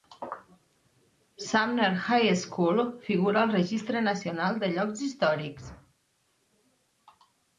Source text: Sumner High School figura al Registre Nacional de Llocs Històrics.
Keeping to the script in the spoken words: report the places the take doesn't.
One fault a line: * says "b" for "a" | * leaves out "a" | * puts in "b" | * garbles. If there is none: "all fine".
all fine